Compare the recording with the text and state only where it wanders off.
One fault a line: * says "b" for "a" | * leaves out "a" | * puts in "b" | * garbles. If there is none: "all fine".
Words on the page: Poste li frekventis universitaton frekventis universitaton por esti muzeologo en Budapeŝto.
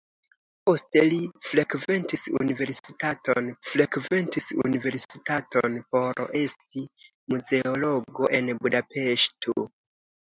all fine